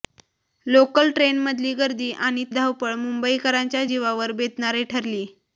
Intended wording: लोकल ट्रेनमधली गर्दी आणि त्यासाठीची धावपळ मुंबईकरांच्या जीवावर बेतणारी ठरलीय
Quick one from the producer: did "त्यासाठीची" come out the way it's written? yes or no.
no